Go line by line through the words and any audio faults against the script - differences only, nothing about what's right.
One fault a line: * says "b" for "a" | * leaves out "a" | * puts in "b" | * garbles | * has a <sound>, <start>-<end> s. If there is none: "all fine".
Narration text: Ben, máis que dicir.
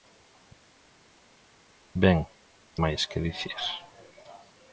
all fine